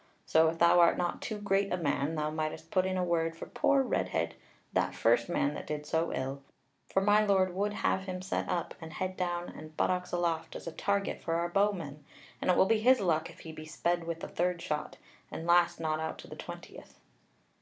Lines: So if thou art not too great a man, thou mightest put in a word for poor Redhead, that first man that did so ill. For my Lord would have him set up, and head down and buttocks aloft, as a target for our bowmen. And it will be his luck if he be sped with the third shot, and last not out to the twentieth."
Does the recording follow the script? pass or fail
pass